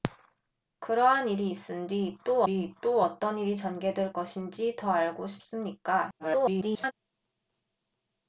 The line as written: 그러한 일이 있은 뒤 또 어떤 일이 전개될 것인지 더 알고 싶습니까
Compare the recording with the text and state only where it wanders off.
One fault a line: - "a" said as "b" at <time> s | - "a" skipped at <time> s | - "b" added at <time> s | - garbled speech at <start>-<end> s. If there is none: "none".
- "뒤 또" added at 2.4 s
- garbled speech at 6.2-6.9 s